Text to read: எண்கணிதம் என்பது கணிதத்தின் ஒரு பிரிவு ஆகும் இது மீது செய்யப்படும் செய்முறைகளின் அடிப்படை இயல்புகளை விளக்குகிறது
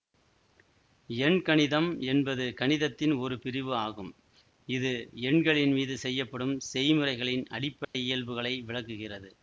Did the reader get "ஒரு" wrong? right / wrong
right